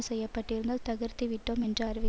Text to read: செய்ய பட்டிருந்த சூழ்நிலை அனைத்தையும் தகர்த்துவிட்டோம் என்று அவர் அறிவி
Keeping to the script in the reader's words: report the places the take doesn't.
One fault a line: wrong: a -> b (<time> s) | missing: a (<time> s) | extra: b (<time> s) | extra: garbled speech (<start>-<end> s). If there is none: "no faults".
missing: சூழ்நிலை அனைத்தையும் (0.8 s)
missing: அவர் (1.8 s)